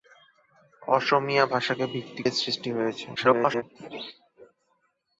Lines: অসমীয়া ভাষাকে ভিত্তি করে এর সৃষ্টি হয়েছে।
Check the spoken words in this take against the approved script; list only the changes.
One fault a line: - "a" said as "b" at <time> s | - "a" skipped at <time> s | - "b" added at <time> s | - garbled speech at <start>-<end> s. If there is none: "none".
- "করে" skipped at 2.2 s
- garbled speech at 3.2-3.6 s